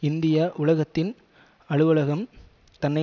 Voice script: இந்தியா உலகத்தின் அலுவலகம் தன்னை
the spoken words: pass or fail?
pass